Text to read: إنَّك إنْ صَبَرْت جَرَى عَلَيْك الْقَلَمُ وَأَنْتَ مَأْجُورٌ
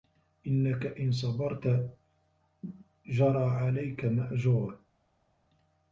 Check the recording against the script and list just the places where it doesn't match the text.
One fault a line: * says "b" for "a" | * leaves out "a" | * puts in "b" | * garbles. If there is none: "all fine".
* leaves out "الْقَلَمُ وَأَنْتَ"